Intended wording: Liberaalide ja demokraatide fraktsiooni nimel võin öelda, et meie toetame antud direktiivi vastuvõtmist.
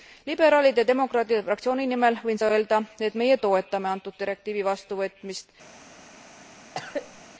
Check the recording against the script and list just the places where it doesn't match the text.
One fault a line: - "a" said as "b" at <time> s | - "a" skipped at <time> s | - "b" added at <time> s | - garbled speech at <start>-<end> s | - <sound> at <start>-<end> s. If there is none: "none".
- cough at 6.7-7.2 s